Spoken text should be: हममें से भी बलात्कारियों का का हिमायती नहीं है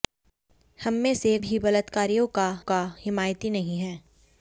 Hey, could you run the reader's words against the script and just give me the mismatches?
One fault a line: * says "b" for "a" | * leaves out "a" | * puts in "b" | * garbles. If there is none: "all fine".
all fine